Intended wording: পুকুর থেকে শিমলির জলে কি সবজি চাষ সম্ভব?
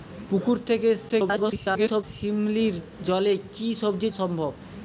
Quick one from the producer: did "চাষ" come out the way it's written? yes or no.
no